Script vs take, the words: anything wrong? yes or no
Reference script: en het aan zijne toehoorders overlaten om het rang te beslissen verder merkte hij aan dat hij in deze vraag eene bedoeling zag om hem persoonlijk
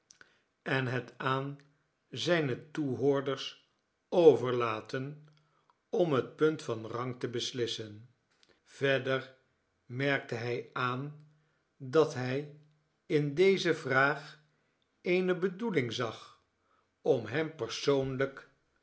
yes